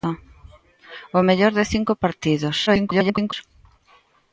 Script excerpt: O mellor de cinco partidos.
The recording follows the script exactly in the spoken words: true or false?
false